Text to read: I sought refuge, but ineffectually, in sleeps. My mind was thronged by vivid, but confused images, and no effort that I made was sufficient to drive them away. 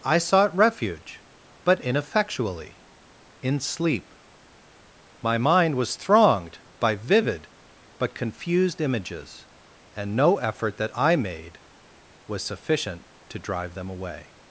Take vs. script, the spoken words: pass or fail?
fail